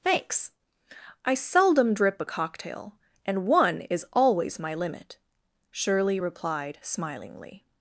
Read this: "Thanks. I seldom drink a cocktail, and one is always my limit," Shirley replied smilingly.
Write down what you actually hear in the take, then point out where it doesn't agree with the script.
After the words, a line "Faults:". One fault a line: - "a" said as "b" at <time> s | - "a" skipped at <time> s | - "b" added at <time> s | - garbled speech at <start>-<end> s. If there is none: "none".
"Thanks. I seldom drip a cocktail, and one is always my limit," Shirley replied smilingly.
Faults:
- "drink" said as "drip" at 1.9 s